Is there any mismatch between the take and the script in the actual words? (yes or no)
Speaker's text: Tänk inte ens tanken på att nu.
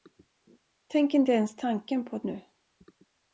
no